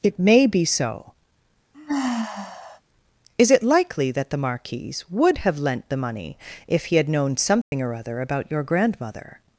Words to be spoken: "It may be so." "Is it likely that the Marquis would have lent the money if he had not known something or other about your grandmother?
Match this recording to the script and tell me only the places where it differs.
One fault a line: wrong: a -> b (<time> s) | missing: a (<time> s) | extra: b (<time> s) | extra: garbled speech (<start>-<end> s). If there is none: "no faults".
missing: not (7.1 s)